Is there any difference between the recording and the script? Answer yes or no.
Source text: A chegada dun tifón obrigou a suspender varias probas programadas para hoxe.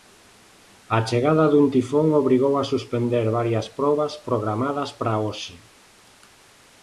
no